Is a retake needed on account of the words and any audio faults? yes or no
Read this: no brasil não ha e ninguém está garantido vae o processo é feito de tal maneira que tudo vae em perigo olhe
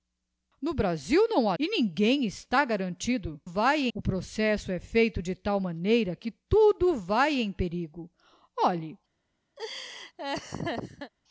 yes